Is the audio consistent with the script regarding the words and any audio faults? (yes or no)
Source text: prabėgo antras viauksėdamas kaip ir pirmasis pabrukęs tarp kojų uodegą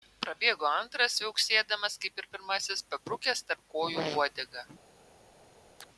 no